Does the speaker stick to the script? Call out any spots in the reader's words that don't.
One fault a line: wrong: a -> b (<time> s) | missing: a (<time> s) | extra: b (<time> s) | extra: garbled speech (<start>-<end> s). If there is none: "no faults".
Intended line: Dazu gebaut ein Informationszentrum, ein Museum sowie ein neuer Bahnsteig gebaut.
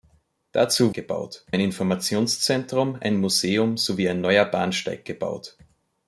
no faults